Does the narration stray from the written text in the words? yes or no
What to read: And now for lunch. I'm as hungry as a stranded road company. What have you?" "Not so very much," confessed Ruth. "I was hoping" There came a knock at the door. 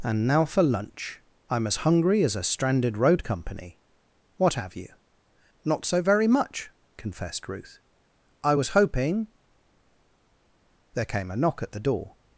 no